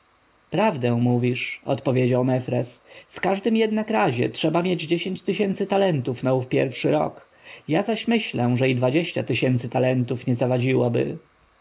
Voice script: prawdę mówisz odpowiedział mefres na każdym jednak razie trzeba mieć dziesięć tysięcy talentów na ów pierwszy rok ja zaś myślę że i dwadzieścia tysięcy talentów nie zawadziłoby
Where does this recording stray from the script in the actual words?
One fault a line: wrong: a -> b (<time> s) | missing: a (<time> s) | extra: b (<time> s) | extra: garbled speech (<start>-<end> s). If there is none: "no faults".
wrong: na -> w (3.1 s)